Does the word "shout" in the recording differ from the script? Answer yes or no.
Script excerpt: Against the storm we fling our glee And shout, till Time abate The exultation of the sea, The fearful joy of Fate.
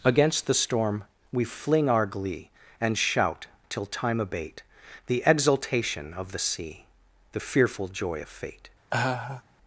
no